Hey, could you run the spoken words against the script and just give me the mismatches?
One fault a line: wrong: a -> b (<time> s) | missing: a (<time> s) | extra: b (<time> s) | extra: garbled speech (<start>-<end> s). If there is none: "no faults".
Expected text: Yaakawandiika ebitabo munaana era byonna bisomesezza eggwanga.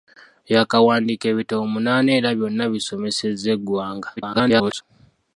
extra: garbled speech (4.2-4.8 s)